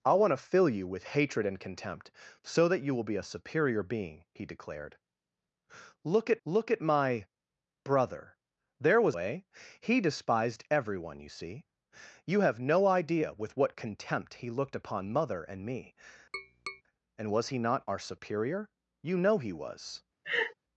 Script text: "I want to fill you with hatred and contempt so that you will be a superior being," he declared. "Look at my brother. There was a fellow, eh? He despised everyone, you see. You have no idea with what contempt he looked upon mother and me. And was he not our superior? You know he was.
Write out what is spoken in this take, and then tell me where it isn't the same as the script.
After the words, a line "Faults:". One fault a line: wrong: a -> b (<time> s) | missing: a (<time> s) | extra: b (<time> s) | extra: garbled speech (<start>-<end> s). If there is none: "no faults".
"I want to fill you with hatred and contempt so that you will be a superior being," he declared. "Look at look at my brother. There was eh? He despised everyone, you see. You have no idea with what contempt he looked upon mother and me. And was he not our superior? You know he was.
Faults:
extra: look at (6.4 s)
missing: a fellow (9.1 s)